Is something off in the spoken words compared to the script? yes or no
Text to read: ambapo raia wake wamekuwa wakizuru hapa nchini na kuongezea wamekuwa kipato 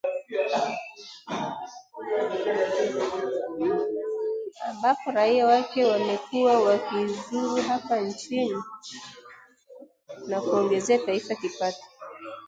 yes